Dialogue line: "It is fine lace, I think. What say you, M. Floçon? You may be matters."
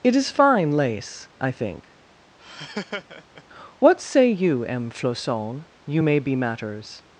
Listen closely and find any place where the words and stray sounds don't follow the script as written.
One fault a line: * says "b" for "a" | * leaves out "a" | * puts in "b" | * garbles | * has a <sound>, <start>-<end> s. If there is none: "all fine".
* has a laugh, 2.4-3.4 s